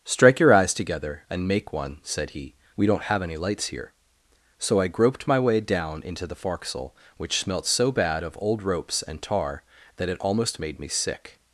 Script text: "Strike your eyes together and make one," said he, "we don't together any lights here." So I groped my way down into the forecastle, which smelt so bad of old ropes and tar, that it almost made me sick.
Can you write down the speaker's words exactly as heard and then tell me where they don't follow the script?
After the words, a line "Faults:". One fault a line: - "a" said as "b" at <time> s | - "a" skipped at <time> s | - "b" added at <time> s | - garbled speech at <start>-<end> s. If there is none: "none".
"Strike your eyes together and make one," said he, "we don't have any lights here." So I groped my way down into the forecastle, which smelt so bad of old ropes and tar, that it almost made me sick.
Faults:
- "together" said as "have" at 3.0 s